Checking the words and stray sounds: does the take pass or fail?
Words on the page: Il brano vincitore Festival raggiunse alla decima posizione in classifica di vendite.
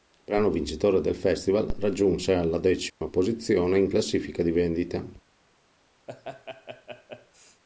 fail